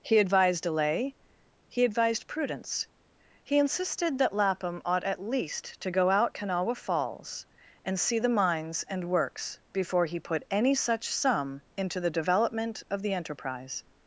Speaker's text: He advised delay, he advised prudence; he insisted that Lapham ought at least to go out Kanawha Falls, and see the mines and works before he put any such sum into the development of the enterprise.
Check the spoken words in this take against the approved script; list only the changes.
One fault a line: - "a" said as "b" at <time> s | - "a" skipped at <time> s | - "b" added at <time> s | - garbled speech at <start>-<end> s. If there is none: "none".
none